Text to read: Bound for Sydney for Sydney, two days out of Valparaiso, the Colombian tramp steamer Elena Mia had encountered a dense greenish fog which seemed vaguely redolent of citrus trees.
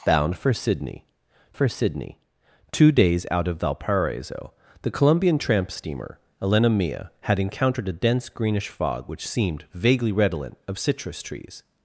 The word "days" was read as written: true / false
true